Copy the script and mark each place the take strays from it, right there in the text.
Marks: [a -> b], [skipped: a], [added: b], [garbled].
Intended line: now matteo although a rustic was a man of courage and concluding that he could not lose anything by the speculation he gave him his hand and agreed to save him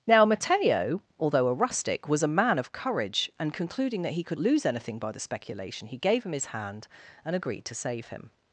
now matteo although a rustic was a man of courage and concluding that he could [skipped: not] lose anything by the speculation he gave him his hand and agreed to save him